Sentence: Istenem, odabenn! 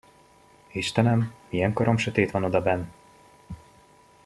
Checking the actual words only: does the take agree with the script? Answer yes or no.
no